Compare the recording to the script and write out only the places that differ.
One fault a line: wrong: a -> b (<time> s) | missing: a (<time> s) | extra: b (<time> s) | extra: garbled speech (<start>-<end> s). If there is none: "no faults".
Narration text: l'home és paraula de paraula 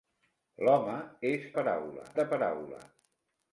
no faults